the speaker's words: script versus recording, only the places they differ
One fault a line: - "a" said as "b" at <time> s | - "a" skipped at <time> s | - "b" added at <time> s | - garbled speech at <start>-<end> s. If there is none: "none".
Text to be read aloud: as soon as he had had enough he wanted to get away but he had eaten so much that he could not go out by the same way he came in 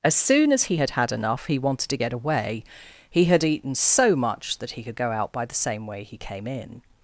- "but" skipped at 2.6 s
- "not" skipped at 5.0 s